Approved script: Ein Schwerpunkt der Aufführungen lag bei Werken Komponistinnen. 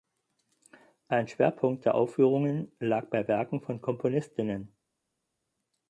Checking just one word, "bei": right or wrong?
right